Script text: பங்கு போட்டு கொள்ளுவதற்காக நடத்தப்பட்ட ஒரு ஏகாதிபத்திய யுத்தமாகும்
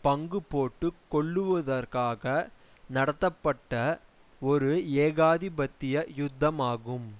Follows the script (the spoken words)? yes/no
yes